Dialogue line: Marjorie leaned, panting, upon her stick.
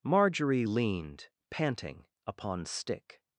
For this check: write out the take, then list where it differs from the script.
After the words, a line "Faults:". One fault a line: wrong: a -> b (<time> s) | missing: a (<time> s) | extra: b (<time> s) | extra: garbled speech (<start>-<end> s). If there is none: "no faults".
Marjorie leaned, panting, upon stick.
Faults:
missing: her (2.7 s)